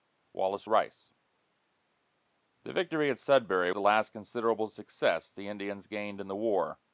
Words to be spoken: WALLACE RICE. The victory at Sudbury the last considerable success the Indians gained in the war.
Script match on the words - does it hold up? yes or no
yes